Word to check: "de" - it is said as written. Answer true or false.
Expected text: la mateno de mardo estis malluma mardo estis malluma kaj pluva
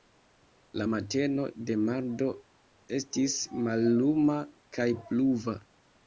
true